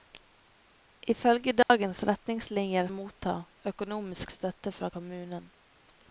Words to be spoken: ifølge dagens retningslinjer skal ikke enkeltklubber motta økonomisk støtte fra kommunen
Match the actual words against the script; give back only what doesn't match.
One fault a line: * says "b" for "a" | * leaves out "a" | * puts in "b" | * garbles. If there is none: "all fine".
* leaves out "skal ikke enkeltklubber"